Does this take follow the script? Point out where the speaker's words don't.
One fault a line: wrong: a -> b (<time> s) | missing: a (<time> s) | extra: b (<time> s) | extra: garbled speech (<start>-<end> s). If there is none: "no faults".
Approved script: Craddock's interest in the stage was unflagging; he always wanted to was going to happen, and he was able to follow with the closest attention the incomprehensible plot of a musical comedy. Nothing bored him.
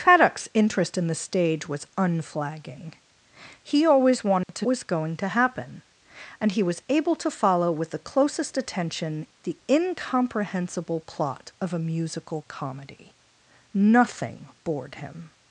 no faults